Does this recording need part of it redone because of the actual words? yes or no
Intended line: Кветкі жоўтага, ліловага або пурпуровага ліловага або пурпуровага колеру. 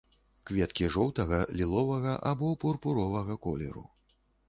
yes